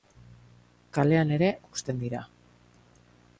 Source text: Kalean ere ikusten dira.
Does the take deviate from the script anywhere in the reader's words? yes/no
no